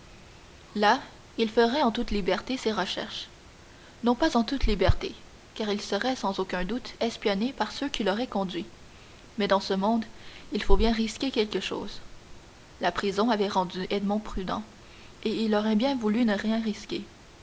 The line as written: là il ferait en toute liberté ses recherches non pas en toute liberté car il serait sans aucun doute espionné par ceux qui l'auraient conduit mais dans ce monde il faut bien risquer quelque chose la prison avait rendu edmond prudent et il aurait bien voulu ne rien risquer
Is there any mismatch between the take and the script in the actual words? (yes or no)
no